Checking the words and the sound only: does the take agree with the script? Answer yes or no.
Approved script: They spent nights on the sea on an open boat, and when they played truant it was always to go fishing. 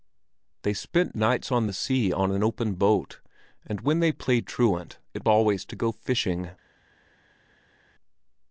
no